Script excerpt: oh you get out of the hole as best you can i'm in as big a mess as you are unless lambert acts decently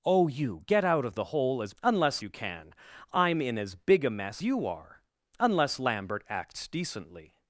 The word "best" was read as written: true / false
false